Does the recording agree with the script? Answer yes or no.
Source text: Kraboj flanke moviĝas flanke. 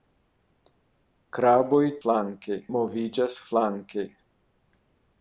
yes